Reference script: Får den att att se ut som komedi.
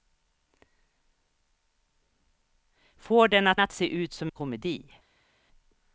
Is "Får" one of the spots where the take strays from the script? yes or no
no